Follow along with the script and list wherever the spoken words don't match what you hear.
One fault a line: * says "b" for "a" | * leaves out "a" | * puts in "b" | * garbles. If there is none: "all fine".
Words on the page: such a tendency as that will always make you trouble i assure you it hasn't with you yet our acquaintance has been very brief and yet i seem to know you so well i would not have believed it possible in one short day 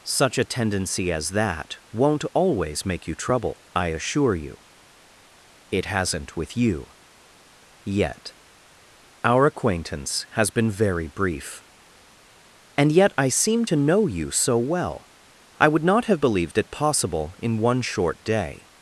* says "won't" for "will"